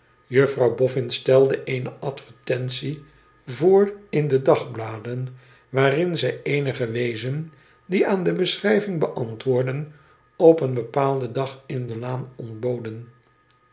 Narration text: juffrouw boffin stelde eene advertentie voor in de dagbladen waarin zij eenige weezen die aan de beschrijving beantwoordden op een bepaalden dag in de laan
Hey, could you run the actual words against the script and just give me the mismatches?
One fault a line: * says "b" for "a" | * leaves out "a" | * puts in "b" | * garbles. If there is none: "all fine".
all fine